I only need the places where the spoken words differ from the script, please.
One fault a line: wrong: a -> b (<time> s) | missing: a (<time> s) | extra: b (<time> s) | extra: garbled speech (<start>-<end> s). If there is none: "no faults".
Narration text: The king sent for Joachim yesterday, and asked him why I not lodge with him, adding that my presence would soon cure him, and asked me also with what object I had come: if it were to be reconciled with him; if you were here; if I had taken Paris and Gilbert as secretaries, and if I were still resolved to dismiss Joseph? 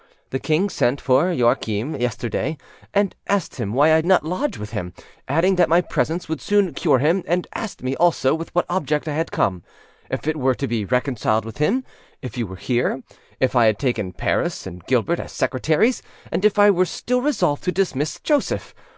no faults